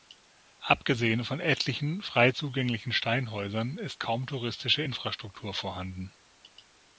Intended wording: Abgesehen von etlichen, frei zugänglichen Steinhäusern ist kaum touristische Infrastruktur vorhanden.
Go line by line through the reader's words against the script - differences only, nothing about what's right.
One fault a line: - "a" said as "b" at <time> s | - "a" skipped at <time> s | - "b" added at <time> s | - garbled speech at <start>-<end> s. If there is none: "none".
none